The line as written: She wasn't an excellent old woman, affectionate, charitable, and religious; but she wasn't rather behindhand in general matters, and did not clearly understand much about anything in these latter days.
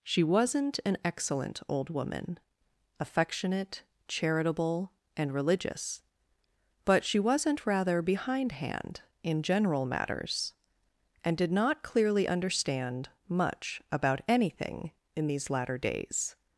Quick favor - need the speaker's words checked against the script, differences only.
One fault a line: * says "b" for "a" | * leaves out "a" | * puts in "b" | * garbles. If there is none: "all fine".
all fine